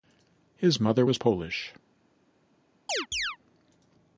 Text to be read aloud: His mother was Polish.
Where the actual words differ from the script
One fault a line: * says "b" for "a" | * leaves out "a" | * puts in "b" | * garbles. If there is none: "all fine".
all fine